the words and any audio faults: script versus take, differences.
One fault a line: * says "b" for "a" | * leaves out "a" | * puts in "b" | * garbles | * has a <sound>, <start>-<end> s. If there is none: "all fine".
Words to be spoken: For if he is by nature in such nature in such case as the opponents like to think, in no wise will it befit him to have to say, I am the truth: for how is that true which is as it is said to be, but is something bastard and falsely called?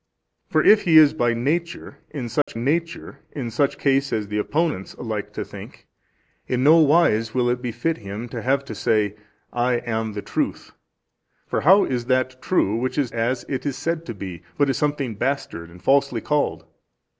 * has a dropout, 2.4-2.5 s